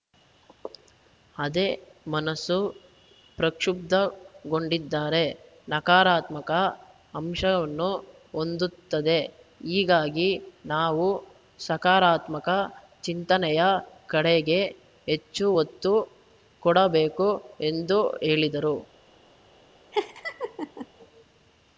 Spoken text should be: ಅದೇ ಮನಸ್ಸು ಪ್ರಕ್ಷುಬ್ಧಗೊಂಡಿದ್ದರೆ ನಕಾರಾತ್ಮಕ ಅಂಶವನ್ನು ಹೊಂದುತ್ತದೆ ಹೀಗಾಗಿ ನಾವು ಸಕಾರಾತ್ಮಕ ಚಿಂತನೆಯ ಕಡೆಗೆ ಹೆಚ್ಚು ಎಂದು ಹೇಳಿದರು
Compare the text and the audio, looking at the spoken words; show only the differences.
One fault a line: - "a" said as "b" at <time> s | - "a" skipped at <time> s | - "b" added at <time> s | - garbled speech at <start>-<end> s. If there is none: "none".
- "ಒತ್ತು ಕೊಡಬೇಕು" added at 15.6 s